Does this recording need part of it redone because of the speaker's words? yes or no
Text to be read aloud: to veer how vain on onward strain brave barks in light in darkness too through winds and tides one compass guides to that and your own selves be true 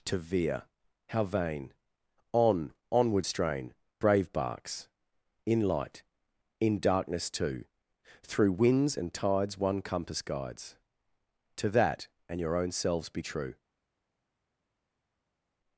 no